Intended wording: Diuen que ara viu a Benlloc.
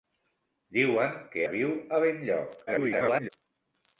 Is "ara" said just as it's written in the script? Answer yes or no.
no